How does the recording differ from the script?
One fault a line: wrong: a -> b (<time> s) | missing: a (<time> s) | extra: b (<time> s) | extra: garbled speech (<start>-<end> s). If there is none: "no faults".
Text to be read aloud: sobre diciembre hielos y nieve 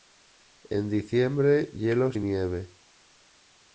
wrong: sobre -> en (0.7 s)